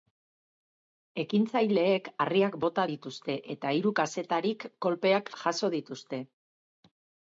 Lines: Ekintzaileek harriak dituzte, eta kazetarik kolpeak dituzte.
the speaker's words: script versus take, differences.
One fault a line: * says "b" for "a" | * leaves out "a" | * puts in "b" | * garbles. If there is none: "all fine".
* puts in "bota"
* puts in "hiru"
* puts in "jaso"